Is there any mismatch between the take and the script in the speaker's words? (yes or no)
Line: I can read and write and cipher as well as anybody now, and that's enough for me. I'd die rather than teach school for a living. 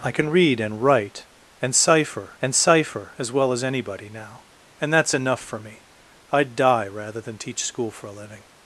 yes